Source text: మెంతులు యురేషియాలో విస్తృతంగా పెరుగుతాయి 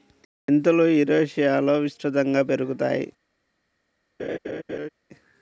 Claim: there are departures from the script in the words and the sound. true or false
true